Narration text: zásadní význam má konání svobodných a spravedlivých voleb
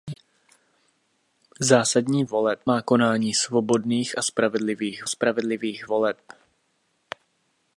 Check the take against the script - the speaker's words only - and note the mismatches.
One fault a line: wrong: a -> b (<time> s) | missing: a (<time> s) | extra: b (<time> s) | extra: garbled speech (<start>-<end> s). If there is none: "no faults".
wrong: význam -> voleb (2.3 s)
extra: spravedlivých (5.1 s)